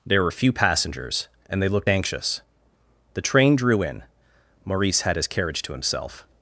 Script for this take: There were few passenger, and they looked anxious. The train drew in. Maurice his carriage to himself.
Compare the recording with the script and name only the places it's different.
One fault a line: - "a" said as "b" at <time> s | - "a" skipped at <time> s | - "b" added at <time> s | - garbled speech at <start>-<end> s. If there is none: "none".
- "passenger" said as "passengers" at 0.5 s
- "had" added at 5.0 s